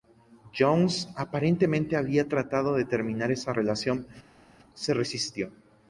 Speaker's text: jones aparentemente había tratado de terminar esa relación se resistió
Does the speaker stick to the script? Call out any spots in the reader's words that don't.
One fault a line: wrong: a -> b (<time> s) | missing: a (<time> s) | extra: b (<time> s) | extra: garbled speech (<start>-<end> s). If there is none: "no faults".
no faults